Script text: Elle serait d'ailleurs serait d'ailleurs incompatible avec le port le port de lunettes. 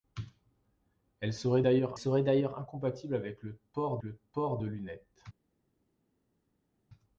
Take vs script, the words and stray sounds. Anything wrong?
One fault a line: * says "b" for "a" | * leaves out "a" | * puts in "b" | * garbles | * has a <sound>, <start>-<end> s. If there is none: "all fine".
all fine